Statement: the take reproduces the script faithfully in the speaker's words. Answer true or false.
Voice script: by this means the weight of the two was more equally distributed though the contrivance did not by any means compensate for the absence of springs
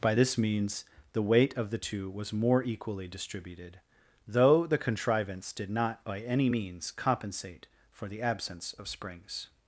true